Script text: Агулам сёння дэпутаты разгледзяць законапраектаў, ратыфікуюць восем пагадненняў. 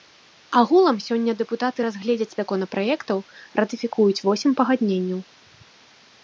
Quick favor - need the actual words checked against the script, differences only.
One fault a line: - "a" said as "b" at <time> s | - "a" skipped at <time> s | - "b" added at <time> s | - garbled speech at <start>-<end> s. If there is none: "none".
none